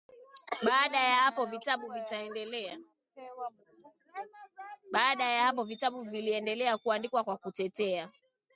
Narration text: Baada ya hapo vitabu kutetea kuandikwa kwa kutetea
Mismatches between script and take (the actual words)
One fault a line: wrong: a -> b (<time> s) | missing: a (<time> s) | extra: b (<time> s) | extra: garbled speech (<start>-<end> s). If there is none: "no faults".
wrong: kutetea -> viliendelea (6.0 s)